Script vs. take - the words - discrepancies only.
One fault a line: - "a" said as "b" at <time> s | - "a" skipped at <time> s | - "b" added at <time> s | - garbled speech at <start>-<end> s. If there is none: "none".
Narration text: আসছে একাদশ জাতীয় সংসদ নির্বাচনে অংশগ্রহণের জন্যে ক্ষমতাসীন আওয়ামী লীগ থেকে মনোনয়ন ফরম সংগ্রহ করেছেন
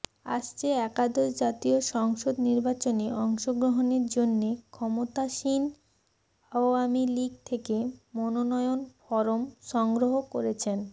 none